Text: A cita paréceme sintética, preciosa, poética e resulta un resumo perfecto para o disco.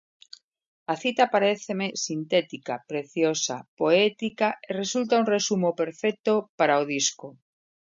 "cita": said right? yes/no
yes